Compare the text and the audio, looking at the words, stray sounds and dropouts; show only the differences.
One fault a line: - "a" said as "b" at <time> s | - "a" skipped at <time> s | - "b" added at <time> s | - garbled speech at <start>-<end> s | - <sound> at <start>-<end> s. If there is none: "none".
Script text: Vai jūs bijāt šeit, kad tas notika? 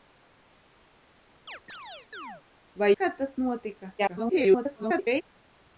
- chirp at 1.5-2.4 s
- "jūs bijāt šeit" skipped at 2.9 s
- garbled speech at 4.0-5.2 s